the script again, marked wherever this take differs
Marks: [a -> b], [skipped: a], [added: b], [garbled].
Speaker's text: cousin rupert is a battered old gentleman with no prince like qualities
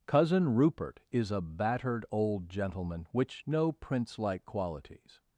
cousin rupert is a battered old gentleman [with -> which] no prince like qualities